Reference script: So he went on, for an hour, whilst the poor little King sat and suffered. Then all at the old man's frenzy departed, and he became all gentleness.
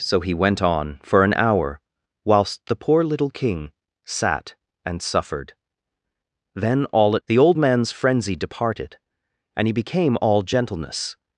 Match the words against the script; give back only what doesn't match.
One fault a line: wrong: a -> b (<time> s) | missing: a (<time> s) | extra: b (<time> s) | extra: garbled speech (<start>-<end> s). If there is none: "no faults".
no faults